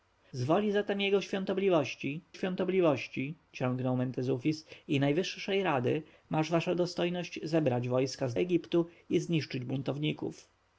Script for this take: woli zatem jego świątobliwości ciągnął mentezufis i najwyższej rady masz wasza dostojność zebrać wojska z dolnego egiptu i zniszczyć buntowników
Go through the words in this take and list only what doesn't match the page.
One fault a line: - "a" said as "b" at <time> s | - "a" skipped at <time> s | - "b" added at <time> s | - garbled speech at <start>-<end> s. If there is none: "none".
- "świątobliwości" added at 2.3 s
- "dolnego" skipped at 8.3 s